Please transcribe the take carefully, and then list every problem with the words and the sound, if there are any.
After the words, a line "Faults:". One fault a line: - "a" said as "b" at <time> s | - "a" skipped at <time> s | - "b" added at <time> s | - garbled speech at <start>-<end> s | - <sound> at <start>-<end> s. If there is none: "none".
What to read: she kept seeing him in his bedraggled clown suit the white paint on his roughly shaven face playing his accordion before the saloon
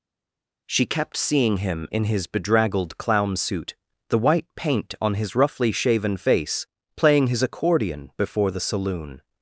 she kept seeing him in his bedraggled clown suit the white paint on his roughly shaven face playing his accordion before the saloon
Faults:
none